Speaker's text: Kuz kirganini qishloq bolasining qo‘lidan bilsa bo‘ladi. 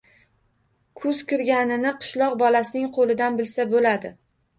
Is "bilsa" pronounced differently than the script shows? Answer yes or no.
no